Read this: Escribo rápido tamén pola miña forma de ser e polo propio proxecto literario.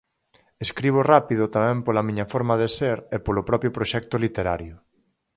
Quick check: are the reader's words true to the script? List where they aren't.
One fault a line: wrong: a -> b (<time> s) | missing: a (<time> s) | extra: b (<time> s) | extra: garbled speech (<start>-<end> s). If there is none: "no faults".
no faults